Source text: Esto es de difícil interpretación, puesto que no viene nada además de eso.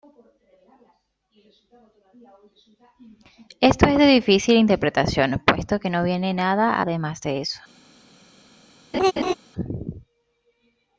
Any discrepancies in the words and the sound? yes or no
yes